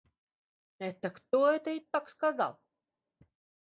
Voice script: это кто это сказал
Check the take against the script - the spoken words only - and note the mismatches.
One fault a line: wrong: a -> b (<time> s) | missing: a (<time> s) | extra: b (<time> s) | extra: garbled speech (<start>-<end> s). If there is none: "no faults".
extra: так (1.8 s)